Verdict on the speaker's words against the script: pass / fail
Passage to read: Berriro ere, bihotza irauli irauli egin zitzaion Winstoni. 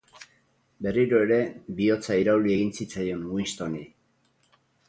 fail